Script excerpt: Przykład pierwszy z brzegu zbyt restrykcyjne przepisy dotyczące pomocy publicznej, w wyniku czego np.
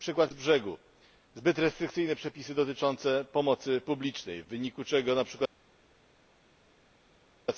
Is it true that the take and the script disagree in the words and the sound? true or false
true